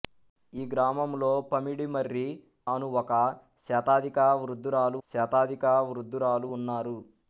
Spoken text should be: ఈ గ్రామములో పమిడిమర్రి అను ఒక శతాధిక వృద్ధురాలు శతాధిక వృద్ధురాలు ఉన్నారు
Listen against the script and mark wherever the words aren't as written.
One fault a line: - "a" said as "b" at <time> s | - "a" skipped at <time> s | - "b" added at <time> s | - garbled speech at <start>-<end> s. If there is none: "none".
none